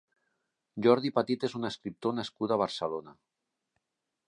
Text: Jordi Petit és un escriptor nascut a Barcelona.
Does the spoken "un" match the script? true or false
true